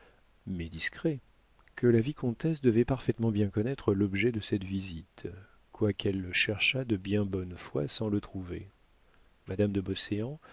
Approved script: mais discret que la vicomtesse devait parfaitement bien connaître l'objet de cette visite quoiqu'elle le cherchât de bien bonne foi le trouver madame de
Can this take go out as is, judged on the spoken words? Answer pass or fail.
fail